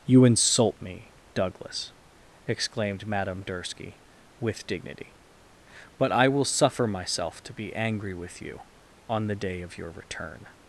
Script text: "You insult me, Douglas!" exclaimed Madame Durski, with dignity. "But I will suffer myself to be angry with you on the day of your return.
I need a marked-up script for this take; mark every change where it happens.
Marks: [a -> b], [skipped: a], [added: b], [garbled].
"You insult me, Douglas!" exclaimed Madame Durski, with dignity. "But I will suffer myself to be angry with you on the day of your return.